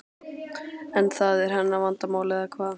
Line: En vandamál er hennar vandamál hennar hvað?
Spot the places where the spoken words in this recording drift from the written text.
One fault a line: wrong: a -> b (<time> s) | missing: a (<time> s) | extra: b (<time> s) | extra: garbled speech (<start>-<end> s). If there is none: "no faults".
wrong: vandamál -> það (1.2 s)
wrong: hennar -> eða (2.4 s)